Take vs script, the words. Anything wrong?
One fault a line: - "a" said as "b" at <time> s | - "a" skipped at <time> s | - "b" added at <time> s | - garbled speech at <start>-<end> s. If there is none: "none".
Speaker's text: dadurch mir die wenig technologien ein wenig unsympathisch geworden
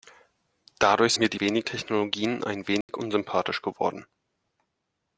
none